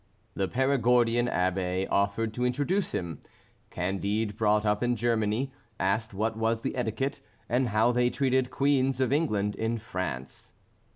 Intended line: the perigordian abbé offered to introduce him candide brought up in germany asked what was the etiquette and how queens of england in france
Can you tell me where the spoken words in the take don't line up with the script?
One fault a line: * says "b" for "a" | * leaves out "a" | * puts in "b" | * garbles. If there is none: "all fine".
* puts in "they treated"